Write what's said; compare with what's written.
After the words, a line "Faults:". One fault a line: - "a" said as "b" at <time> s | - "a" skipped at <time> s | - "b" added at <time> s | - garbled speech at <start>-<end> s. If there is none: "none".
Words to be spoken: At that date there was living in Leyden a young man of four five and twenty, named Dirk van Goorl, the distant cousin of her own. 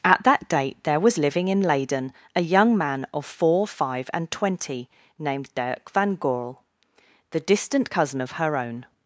At that date there was living in Leyden a young man of four five and twenty, named Dirk van Goorl, the distant cousin of her own.
Faults:
none